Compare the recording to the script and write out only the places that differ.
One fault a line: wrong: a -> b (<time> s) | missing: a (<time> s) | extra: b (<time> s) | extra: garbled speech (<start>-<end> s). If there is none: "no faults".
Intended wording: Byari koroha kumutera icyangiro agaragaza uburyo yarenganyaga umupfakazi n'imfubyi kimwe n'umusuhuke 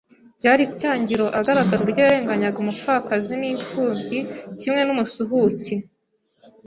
missing: koroha kumutera (0.6 s)